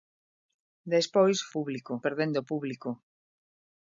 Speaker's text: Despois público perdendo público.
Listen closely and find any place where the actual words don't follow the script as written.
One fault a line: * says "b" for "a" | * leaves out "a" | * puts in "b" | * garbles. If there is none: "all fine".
all fine